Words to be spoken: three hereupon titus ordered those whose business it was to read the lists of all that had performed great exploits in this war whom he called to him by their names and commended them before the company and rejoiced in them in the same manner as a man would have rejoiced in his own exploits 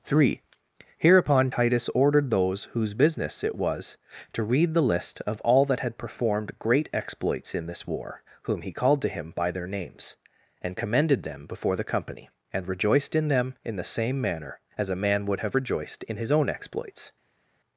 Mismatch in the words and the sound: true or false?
true